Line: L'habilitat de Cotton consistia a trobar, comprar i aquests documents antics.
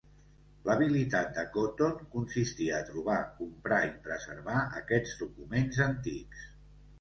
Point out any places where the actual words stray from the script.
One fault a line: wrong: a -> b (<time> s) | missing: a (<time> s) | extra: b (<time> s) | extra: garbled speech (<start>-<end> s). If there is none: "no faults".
extra: preservar (4.1 s)